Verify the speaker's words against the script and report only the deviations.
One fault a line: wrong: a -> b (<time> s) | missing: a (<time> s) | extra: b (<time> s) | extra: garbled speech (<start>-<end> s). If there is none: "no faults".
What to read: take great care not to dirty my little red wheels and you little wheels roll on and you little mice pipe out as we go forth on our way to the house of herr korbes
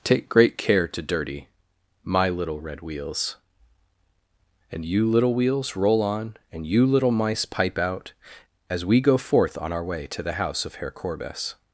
missing: not (0.9 s)